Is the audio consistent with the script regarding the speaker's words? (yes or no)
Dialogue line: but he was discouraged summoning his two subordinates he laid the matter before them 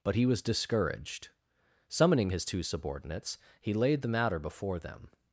yes